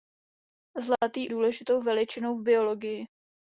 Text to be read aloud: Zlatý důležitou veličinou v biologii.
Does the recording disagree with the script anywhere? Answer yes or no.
no